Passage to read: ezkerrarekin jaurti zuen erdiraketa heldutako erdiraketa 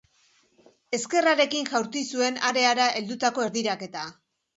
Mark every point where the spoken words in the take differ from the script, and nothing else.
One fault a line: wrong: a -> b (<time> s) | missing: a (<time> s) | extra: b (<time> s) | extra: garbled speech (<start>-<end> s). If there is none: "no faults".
wrong: erdiraketa -> areara (2.5 s)